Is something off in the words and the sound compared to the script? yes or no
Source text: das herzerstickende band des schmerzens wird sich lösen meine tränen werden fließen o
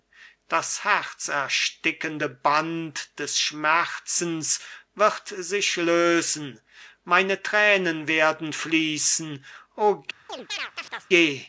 yes